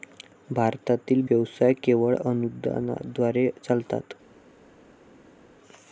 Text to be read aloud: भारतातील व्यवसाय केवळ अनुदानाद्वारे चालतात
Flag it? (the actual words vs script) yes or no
no